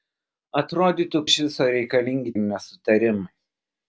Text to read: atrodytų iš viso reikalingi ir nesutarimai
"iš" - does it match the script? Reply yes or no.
yes